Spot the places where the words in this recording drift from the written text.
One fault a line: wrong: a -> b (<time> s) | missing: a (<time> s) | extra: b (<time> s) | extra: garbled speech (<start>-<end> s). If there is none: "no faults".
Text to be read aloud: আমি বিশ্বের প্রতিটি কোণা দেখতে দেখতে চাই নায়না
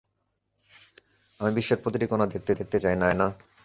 no faults